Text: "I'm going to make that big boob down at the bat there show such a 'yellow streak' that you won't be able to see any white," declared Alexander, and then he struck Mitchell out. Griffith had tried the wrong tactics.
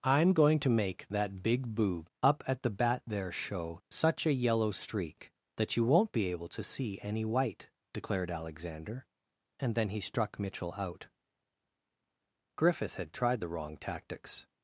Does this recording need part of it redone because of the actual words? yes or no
yes